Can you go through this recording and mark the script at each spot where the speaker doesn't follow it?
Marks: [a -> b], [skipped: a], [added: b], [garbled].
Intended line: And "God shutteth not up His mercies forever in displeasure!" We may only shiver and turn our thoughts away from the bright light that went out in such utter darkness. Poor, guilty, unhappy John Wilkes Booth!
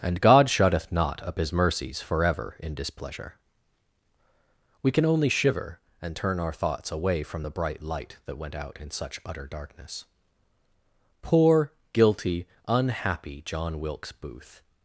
And "God shutteth not up His mercies forever in displeasure!" We [may -> can] only shiver and turn our thoughts away from the bright light that went out in such utter darkness. Poor, guilty, unhappy John Wilkes Booth!